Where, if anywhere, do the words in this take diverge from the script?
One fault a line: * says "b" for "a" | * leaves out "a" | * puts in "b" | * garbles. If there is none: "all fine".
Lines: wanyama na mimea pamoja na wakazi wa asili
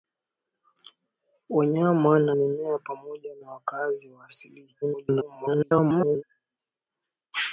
* garbles